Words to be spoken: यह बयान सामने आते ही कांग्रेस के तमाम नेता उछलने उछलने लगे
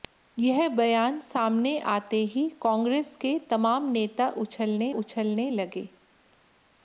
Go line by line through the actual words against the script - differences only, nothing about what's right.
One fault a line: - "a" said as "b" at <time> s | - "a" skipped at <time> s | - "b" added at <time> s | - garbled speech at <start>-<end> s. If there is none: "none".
none